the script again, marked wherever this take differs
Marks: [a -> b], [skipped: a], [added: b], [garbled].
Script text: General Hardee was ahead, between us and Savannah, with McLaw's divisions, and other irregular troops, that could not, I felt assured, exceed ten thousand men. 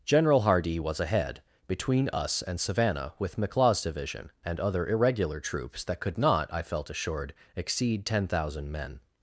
General Hardee was ahead, between us and Savannah, with McLaw's [divisions, -> division] and other irregular troops, that could not, I felt assured, exceed ten thousand men.